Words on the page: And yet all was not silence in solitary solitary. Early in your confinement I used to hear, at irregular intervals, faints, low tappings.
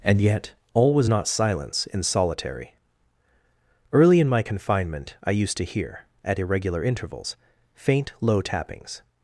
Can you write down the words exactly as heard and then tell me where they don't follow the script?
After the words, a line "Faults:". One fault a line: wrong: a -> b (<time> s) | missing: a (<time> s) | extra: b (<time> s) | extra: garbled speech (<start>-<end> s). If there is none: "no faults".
And yet all was not silence in solitary. Early in my confinement I used to hear, at irregular intervals, faint, low tappings.
Faults:
missing: solitary (2.7 s)
wrong: your -> my (4.3 s)
wrong: faints -> faint (7.7 s)